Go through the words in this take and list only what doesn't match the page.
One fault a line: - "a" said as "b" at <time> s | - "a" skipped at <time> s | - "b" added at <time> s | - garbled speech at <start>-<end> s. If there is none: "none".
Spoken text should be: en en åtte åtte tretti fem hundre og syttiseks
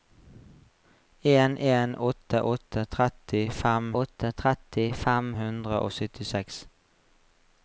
- "åtte tretti fem" added at 4.0 s